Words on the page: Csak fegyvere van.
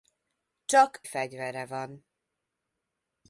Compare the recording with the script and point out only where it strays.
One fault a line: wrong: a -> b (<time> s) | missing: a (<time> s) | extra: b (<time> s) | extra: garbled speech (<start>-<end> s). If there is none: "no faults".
no faults